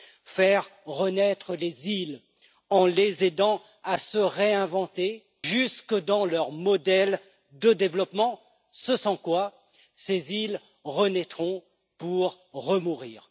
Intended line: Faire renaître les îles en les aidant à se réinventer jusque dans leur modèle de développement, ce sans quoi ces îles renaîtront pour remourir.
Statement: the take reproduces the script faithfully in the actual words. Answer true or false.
true